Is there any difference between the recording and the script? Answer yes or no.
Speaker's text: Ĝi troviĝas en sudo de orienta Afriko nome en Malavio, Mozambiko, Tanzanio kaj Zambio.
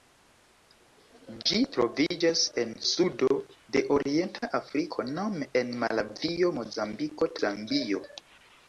yes